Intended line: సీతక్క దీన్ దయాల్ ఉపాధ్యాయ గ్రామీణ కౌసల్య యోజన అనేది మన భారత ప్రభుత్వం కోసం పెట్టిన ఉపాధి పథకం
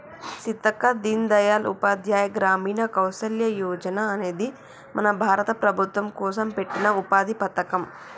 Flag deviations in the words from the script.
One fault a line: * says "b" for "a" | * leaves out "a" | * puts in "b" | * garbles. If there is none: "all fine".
all fine